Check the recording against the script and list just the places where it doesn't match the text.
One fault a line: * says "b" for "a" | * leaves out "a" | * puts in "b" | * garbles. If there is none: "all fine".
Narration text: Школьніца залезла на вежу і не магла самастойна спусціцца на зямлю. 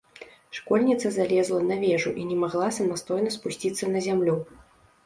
all fine